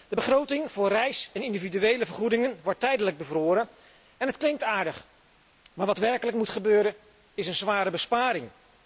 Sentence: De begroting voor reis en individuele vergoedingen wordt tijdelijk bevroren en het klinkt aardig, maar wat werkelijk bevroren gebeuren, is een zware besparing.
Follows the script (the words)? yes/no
no